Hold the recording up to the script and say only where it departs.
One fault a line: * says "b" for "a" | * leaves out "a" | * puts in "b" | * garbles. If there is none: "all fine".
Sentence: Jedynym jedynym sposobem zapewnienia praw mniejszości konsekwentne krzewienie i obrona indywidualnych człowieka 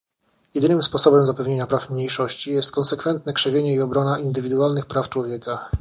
* leaves out "jedynym"
* puts in "jest"
* puts in "praw"